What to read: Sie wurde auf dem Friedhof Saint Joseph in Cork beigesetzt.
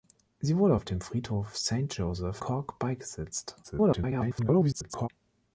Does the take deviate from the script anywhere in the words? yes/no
yes